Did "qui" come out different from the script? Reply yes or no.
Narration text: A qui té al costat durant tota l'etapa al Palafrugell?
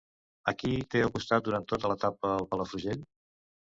no